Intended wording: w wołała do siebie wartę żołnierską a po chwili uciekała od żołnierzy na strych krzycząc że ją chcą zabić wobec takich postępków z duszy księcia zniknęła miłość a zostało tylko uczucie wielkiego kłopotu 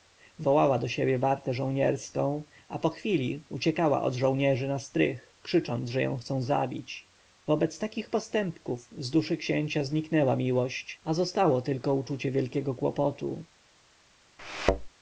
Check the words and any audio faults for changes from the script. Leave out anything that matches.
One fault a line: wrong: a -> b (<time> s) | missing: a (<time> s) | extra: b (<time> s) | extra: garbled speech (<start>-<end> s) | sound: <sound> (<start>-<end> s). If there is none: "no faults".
sound: thud (14.4-14.9 s)